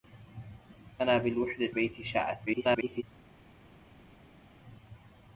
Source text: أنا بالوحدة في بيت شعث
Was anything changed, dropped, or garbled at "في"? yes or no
yes